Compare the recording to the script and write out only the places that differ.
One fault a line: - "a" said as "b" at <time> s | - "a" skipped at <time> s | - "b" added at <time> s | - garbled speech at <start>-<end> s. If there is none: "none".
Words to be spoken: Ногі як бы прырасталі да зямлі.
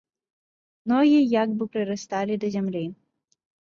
none